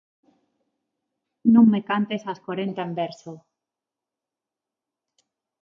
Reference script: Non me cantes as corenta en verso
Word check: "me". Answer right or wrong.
right